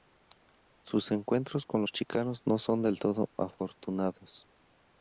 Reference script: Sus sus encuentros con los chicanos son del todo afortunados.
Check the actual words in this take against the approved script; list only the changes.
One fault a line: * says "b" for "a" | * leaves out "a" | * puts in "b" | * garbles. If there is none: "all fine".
* leaves out "sus"
* puts in "no"